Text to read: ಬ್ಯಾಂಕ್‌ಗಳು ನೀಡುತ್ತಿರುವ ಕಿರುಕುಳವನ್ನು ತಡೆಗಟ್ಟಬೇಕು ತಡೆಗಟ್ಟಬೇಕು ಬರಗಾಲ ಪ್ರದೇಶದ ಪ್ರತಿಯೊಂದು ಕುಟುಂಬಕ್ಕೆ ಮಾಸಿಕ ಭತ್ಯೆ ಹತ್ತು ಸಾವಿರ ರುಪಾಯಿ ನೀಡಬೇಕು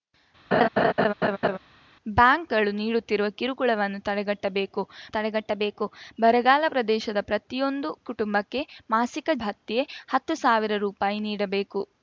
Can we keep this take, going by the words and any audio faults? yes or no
no